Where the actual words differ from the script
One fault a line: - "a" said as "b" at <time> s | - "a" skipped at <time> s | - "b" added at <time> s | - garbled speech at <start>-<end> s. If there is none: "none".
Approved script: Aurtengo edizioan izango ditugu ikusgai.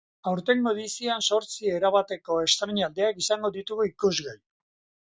- "zortzi erabateko estreinaldiak" added at 1.2 s